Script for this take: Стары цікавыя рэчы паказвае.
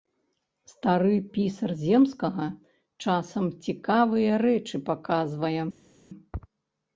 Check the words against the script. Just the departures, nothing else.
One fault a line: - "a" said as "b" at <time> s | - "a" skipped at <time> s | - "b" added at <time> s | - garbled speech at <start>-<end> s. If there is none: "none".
- "пісар земскага часам" added at 1.4 s